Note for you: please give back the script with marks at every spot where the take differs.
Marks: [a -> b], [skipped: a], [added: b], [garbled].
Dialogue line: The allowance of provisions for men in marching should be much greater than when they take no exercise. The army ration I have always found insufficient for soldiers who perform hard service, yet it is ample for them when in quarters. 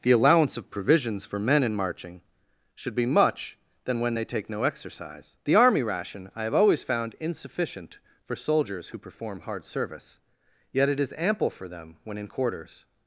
The allowance of provisions for men in marching should be much [skipped: greater] than when they take no exercise. The army ration I have always found insufficient for soldiers who perform hard service, yet it is ample for them when in quarters.